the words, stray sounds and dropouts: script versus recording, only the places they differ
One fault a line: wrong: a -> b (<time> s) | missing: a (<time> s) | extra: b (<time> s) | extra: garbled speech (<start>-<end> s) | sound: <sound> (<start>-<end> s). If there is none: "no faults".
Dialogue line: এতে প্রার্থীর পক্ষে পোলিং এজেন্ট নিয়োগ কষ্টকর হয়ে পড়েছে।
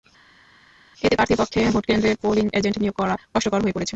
extra: ভোটকেন্দ্রে (1.7 s)
extra: করা (3.0 s)